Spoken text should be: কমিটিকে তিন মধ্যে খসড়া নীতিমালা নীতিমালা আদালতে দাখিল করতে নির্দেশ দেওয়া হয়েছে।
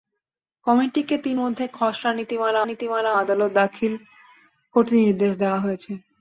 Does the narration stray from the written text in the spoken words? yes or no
no